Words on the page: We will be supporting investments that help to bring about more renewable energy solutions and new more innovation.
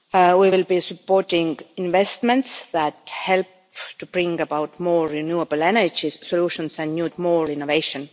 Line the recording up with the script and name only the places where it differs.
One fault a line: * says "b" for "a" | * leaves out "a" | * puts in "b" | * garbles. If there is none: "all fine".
all fine